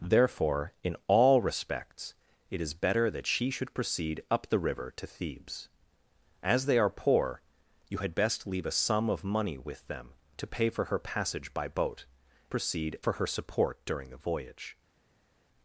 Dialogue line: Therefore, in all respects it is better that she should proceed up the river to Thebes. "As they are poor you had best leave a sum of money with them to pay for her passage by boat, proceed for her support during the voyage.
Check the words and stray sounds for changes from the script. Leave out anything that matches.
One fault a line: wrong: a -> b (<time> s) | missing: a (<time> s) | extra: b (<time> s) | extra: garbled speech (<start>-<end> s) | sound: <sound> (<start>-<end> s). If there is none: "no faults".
no faults